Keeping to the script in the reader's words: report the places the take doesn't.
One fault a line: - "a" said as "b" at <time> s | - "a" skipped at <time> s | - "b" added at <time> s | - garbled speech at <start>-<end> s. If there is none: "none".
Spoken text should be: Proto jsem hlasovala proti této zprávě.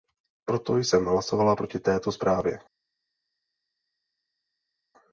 none